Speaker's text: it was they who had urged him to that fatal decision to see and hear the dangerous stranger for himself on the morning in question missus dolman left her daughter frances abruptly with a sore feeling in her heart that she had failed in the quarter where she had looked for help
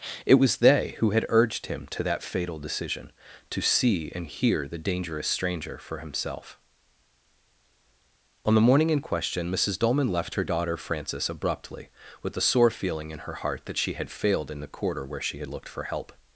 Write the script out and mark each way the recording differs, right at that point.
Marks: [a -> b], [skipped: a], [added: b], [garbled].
it was they who had urged him to that fatal decision to see and hear the dangerous stranger for himself on the morning in question missus dolman left her daughter frances abruptly with a sore feeling in her heart that she had failed in the quarter where she had looked for help